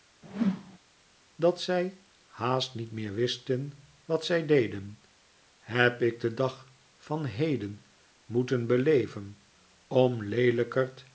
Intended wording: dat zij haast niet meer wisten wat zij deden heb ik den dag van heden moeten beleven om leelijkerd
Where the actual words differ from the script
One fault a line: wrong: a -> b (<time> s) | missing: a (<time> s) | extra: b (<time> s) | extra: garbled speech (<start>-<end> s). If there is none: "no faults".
no faults